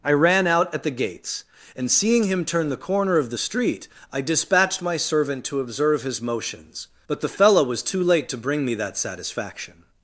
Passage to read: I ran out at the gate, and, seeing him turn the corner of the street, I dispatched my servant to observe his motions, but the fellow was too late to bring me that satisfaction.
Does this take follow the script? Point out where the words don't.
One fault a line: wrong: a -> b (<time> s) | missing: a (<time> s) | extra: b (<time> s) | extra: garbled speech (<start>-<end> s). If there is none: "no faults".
wrong: gate -> gates (0.9 s)